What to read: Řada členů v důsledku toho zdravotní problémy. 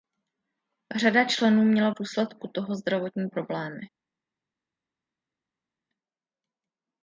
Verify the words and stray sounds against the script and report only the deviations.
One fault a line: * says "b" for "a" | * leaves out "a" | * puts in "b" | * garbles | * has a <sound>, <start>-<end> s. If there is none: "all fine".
* puts in "měla"